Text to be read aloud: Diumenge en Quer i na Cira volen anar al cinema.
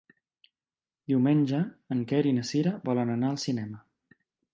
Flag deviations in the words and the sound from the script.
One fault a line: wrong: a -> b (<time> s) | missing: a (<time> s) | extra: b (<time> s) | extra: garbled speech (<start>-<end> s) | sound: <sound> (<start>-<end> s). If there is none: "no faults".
no faults